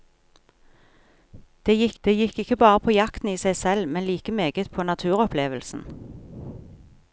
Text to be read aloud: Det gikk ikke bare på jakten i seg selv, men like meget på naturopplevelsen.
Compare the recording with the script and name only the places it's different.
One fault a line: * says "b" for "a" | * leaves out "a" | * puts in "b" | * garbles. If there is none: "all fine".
* puts in "det gikk"